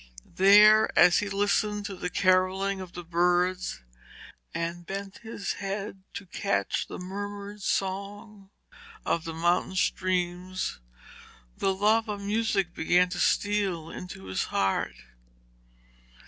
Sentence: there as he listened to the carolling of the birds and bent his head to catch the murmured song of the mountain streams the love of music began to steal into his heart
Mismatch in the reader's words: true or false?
false